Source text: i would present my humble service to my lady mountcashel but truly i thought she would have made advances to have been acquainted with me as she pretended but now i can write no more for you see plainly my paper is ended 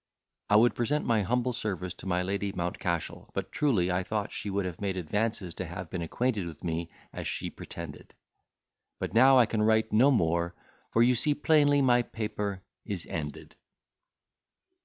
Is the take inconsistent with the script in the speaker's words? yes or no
no